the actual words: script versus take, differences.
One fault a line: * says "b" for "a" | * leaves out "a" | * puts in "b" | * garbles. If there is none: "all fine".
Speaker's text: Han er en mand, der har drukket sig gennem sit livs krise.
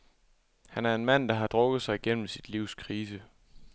all fine